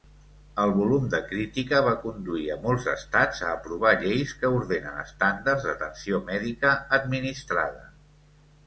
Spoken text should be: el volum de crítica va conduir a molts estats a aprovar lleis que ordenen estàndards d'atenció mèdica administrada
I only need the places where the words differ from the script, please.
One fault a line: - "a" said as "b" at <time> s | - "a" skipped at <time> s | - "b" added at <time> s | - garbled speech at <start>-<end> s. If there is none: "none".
none